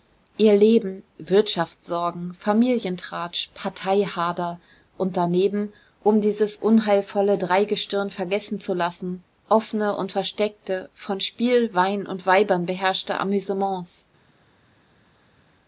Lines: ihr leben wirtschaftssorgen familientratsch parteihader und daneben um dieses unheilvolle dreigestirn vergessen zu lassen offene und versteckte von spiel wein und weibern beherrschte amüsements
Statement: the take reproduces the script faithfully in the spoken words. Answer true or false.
true